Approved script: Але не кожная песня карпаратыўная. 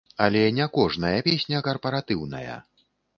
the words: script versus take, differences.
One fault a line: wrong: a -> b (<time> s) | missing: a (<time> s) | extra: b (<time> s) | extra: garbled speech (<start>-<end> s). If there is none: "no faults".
no faults